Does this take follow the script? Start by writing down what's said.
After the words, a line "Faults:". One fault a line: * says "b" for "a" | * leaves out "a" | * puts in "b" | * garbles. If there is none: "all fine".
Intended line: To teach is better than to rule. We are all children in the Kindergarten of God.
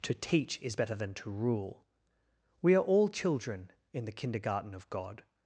To teach is better than to rule. We are all children in the Kindergarten of God.
Faults:
all fine